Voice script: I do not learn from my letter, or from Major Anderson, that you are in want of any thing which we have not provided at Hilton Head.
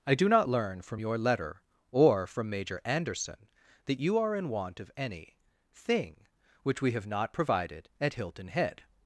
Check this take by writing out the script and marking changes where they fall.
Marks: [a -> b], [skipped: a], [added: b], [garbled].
I do not learn from [my -> your] letter, or from Major Anderson, that you are in want of any thing which we have not provided at Hilton Head.